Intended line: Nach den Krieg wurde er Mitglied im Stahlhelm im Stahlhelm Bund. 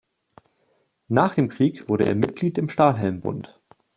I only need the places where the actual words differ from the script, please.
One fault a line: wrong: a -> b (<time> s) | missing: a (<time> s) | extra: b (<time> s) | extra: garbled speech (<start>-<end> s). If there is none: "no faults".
wrong: den -> dem (1.3 s)
missing: im Stahlhelm (3.2 s)